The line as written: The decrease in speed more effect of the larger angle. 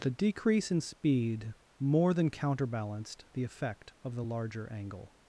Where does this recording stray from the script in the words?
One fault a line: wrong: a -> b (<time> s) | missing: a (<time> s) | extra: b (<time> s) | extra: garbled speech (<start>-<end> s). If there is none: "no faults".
extra: than counterbalanced the (2.1 s)